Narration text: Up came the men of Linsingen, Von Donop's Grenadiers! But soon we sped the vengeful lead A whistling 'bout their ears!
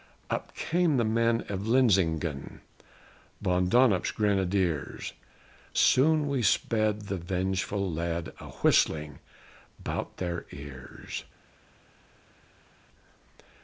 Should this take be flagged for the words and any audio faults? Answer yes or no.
yes